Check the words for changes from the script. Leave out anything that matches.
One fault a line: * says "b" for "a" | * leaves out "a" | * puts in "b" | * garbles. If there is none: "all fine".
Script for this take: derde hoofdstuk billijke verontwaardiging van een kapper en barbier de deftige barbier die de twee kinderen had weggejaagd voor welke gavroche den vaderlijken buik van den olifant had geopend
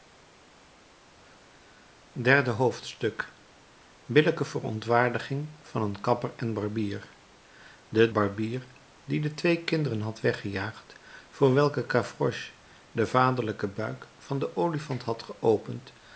* leaves out "deftige"